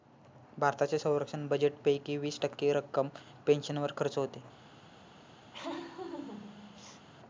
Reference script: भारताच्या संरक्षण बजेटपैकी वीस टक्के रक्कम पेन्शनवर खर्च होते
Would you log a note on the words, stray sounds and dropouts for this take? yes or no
yes